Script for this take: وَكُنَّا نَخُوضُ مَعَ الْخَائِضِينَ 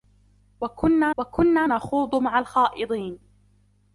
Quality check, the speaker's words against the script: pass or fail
fail